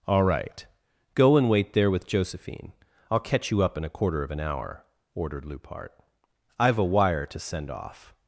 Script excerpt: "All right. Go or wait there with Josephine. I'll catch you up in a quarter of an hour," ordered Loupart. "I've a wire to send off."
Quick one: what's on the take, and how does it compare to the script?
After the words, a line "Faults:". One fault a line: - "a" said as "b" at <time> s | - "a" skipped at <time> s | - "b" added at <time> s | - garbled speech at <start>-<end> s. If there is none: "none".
"All right. Go and wait there with Josephine. I'll catch you up in a quarter of an hour," ordered Loupart. "I've a wire to send off."
Faults:
- "or" said as "and" at 1.4 s